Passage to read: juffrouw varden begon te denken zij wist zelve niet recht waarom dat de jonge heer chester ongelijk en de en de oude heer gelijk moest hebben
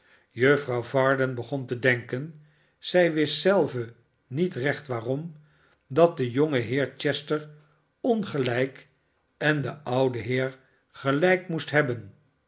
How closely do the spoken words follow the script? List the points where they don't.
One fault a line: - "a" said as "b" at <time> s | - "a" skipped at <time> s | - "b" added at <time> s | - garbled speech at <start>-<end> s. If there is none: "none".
- "en de" skipped at 9.8 s